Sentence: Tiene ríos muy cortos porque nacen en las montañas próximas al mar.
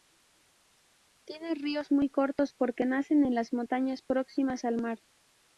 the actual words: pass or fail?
pass